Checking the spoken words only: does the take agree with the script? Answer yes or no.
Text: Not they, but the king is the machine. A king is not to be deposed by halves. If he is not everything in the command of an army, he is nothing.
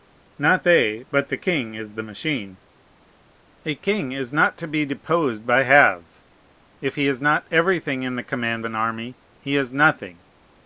no